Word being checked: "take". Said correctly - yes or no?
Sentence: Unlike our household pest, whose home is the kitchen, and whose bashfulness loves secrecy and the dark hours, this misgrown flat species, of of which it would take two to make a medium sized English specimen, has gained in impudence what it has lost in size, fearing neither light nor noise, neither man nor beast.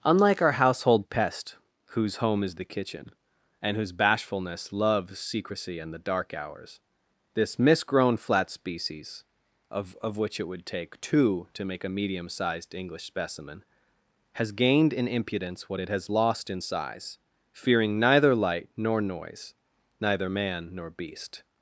yes